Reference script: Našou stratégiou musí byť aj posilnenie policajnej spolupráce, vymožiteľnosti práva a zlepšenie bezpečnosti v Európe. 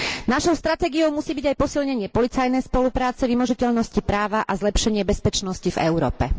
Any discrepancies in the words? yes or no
no